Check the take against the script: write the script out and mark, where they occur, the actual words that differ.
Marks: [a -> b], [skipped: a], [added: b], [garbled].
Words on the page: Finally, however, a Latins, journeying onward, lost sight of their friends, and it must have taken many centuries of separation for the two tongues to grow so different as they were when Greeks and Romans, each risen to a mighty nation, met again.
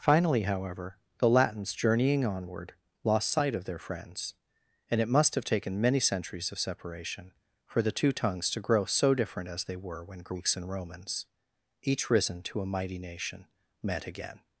Finally, however, [a -> the] Latins, journeying onward, lost sight of their friends, and it must have taken many centuries of separation for the two tongues to grow so different as they were when Greeks and Romans, each risen to a mighty nation, met again.